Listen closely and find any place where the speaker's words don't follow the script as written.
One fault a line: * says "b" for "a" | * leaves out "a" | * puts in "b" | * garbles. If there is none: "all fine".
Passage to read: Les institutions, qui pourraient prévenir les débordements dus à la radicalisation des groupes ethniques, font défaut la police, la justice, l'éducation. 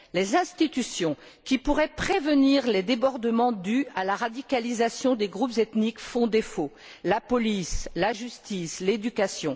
all fine